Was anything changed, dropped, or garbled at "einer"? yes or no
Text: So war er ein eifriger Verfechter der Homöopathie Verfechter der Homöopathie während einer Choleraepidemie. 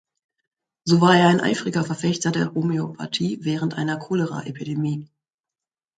no